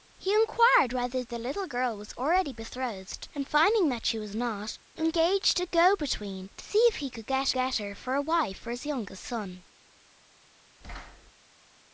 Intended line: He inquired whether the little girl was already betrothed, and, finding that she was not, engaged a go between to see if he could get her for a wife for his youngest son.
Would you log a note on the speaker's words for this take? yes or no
yes